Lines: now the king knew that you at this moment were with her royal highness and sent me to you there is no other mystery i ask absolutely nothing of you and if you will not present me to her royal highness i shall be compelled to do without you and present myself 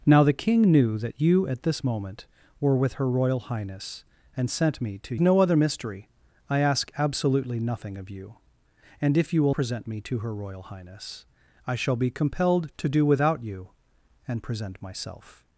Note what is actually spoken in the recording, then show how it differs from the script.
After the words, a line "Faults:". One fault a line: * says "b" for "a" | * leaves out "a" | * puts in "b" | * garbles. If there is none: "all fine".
now the king knew that you at this moment were with her royal highness and sent me to no other mystery i ask absolutely nothing of you and if you will present me to her royal highness i shall be compelled to do without you and present myself
Faults:
* leaves out "you there is"
* leaves out "not"